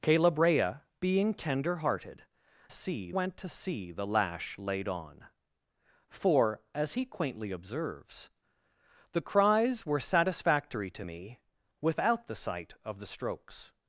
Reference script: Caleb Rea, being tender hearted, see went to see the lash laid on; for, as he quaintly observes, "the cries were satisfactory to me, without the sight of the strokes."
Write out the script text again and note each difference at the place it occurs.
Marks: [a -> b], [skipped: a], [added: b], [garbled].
Caleb Rea, being tender hearted, see went to see the lash laid on; for, as he quaintly observes, "the cries were satisfactory to me, without the sight of the strokes."